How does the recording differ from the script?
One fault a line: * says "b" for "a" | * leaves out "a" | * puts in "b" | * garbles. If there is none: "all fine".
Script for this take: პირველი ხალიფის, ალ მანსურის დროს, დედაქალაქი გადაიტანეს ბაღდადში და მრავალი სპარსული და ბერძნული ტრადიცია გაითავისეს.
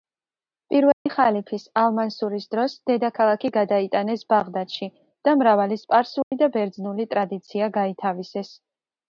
all fine